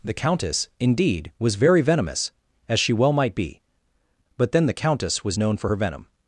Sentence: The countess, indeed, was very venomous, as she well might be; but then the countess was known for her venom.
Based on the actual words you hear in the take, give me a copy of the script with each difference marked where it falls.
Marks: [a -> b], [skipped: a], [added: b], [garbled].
The countess, indeed, was very venomous, as she well might be; but then the countess was known for her venom.